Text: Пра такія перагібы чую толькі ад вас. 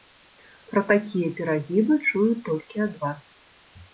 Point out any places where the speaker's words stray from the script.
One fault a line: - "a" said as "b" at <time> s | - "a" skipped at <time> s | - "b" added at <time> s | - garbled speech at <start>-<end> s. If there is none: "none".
none